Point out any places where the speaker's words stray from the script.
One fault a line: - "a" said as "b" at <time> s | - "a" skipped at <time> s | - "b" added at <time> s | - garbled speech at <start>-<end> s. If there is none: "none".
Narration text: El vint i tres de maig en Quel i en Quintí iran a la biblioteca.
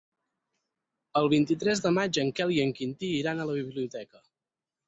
none